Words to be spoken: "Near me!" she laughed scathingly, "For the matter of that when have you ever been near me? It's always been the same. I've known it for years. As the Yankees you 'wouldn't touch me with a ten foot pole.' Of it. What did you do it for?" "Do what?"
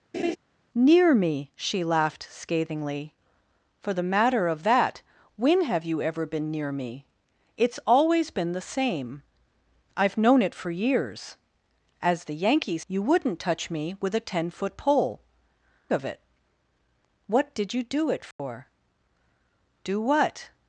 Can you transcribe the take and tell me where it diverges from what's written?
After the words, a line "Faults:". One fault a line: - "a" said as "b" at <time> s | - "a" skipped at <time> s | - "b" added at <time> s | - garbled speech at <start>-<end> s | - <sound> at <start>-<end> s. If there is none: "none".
"Near me!" she laughed scathingly, "For the matter of that when have you ever been near me? It's always been the same. I've known it for years. As the Yankees you 'wouldn't touch me with a ten foot pole.' Of it. What did you do it for?" "Do what?"
Faults:
- laugh at 0.1-0.4 s
- dropout at 18.3-18.4 s